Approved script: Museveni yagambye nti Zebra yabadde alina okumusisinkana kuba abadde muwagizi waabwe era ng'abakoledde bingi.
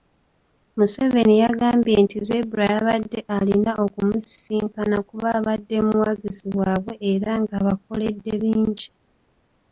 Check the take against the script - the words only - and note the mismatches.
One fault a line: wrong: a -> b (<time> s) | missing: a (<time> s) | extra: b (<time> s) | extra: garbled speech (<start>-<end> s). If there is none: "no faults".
no faults